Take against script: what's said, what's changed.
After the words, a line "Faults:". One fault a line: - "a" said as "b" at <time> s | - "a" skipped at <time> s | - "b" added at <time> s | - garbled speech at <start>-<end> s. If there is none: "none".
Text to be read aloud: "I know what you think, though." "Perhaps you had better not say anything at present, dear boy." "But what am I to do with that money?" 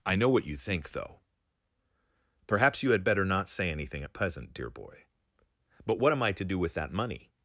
"I know what you think, though." "Perhaps you had better not say anything at present, dear boy." "But what am I to do with that money?"
Faults:
none